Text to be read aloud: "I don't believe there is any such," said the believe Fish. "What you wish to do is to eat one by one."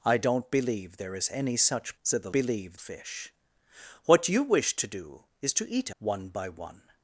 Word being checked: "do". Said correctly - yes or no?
yes